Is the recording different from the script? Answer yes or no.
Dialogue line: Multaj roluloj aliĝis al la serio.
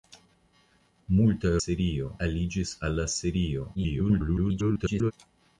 yes